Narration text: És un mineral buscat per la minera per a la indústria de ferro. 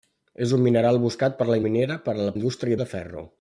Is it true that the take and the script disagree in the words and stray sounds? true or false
false